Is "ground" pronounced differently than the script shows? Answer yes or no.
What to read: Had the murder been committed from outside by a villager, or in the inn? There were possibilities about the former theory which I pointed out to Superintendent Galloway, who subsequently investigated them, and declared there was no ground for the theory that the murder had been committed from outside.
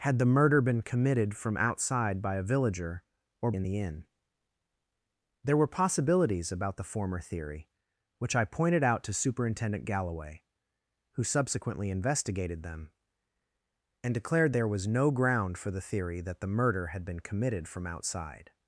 no